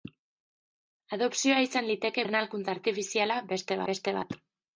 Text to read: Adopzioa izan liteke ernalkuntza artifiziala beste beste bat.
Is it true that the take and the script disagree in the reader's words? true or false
false